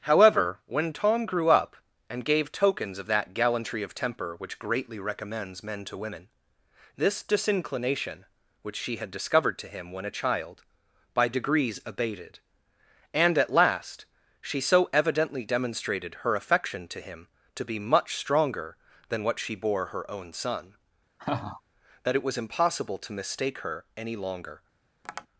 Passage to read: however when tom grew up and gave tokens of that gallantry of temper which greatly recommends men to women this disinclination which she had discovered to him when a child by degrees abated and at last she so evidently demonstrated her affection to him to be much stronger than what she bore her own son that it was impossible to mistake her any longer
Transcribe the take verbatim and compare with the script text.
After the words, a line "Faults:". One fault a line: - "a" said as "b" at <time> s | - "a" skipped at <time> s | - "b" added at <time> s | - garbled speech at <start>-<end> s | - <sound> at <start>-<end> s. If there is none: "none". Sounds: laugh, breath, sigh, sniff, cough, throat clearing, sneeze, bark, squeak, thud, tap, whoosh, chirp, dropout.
however when tom grew up and gave tokens of that gallantry of temper which greatly recommends men to women this disinclination which she had discovered to him when a child by degrees abated and at last she so evidently demonstrated her affection to him to be much stronger than what she bore her own son that it was impossible to mistake her any longer
Faults:
- laugh at 21.2-21.6 s
- tap at 25.0-25.3 s